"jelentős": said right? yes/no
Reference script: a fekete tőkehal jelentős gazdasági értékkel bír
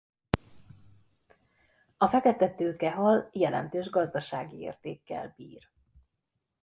yes